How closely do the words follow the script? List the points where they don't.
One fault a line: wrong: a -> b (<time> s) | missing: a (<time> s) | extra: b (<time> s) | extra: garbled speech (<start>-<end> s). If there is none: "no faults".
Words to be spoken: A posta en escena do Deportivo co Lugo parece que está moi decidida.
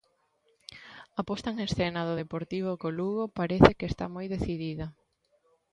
no faults